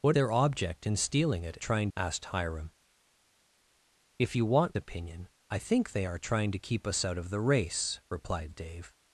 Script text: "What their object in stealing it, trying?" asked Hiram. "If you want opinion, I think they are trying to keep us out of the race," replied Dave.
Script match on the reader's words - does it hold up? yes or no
yes